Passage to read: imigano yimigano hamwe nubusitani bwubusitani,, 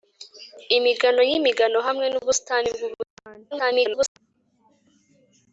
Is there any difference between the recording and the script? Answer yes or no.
yes